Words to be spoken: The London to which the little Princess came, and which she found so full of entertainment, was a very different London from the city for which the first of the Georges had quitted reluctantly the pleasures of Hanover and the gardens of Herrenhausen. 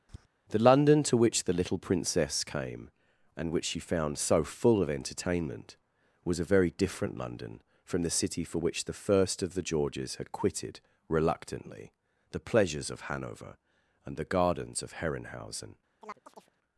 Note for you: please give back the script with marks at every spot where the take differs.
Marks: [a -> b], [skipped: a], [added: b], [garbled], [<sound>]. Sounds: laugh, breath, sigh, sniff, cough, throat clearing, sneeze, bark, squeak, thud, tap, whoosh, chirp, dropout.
[tap] The London to which the little Princess came, and which she found so full of entertainment, was a very different London from the city for which the first of the Georges had quitted reluctantly the pleasures of Hanover and the gardens of Herrenhausen. [chirp]